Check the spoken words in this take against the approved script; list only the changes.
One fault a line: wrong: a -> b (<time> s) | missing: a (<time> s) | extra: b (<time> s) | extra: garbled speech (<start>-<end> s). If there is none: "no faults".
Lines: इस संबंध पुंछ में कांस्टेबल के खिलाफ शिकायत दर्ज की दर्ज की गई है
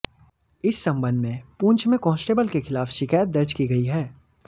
extra: में (1.2 s)
missing: दर्ज की (3.7 s)